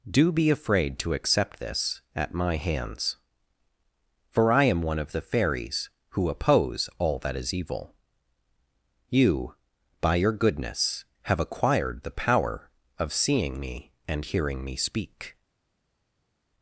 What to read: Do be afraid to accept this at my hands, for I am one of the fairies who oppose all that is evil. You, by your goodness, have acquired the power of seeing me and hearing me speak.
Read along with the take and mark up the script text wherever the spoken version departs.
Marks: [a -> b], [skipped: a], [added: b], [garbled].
Do be afraid to accept this at my hands, for I am one of the fairies who oppose all that is evil. You, by your goodness, have acquired the power of seeing me and hearing me speak.